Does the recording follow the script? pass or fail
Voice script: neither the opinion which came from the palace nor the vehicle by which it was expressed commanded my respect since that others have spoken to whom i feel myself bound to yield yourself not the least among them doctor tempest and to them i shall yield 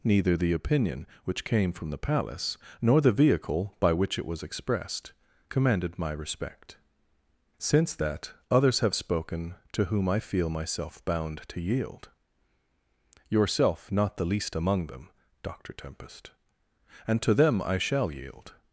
pass